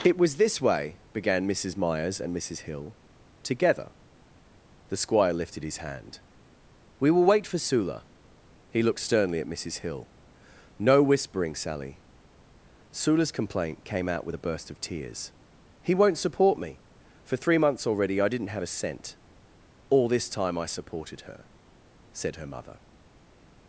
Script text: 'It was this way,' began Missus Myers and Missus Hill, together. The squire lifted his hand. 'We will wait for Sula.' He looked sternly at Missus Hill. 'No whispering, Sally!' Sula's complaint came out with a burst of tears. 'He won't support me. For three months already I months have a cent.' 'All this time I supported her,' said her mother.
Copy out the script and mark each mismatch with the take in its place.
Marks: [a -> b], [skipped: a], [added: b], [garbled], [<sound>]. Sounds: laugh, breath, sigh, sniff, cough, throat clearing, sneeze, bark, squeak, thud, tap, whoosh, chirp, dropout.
'It was this way,' began Missus Myers and Missus Hill, together. The squire lifted his hand. 'We will wait for Sula.' He looked sternly at Missus Hill. 'No whispering, Sally!' Sula's complaint came out with a burst of tears. 'He won't support me. For three months already I [months -> didn't] have a cent.' 'All this time I supported her,' said her mother.